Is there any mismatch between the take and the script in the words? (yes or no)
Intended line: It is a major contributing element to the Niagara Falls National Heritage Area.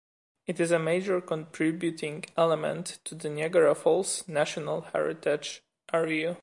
no